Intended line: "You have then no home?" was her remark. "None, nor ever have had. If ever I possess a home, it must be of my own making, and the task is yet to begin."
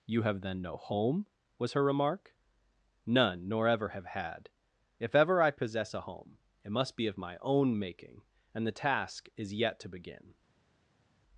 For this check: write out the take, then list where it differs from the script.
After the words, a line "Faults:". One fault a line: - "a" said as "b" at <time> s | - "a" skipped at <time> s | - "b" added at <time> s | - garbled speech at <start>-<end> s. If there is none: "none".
"You have then no home?" was her remark. "None, nor ever have had. If ever I possess a home, it must be of my own making, and the task is yet to begin."
Faults:
none